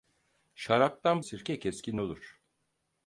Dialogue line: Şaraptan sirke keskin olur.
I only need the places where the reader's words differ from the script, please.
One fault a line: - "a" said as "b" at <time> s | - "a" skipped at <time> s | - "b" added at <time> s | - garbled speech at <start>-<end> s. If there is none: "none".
none